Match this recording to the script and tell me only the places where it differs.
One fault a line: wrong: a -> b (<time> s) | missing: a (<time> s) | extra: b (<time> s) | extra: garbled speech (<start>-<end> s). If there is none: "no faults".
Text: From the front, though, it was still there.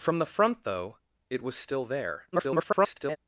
extra: garbled speech (2.3-3.2 s)